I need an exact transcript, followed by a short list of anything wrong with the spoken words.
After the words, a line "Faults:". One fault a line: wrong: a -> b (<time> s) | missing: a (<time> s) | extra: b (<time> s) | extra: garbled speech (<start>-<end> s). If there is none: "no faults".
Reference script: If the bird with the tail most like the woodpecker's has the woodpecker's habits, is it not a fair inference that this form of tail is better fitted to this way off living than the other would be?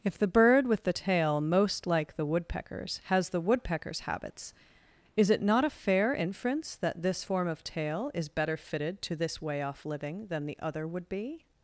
If the bird with the tail most like the woodpecker's has the woodpecker's habits, is it not a fair inference that this form of tail is better fitted to this way off living than the other would be?
Faults:
no faults